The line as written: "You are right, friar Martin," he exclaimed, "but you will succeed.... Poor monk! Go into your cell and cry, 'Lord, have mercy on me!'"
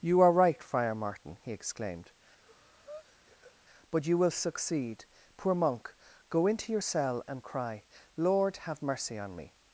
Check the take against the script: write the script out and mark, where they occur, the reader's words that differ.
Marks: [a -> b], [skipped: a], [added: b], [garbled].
"You are right, friar Martin," he exclaimed, "but you will succeed.... Poor monk! Go into your cell and cry, 'Lord, have mercy on me!'"